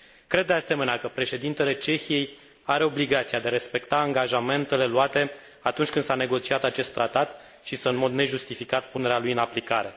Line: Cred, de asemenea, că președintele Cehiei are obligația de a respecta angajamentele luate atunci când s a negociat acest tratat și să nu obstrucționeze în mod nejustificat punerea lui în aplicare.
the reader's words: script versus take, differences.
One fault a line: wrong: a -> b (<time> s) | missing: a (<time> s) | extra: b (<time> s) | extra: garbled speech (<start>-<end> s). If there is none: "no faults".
missing: nu obstrucționeze (7.9 s)